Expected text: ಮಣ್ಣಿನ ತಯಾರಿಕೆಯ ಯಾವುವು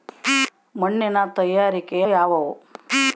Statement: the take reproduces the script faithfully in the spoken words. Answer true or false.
true